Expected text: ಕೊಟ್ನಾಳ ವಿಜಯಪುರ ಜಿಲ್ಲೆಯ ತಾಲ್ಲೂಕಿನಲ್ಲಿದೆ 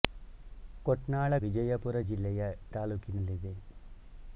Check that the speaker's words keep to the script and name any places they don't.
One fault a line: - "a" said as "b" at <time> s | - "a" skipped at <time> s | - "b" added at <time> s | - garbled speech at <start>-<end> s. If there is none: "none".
none